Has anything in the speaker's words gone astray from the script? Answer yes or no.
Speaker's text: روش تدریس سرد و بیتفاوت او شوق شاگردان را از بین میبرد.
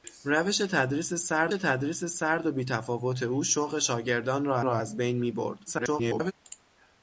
yes